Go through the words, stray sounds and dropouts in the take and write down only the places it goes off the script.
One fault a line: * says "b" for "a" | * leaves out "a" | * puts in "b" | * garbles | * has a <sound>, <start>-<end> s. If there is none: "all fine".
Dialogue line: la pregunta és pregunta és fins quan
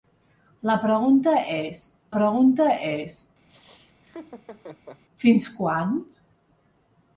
* has a laugh, 3.5-5.0 s